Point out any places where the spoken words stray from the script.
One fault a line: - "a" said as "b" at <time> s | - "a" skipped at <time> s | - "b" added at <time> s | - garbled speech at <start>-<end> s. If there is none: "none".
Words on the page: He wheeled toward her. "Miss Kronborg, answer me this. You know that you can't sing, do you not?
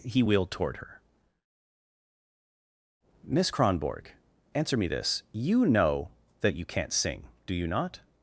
none